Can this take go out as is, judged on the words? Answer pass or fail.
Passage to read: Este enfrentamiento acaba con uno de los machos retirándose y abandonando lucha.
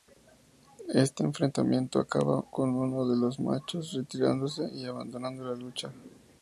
fail